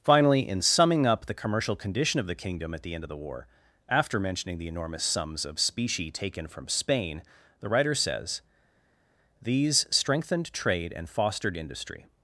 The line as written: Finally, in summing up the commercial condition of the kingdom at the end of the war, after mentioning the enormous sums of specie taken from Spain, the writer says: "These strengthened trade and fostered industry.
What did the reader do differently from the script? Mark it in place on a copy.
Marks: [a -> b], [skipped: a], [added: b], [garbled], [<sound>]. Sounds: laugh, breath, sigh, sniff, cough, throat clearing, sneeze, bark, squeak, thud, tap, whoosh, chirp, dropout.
Finally, in summing up the commercial condition of the kingdom at the end of the war, after mentioning the enormous sums of specie taken from Spain, the writer says: "These strengthened trade and fostered industry.